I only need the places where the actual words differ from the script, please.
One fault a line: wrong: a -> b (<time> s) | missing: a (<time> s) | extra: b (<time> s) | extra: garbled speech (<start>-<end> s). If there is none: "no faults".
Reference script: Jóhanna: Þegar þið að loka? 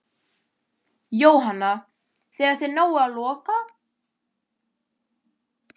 extra: náið (2.8 s)